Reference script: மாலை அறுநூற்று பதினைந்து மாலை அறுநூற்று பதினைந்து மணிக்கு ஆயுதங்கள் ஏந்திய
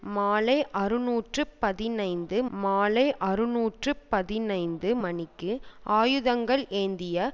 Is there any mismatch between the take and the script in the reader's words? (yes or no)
no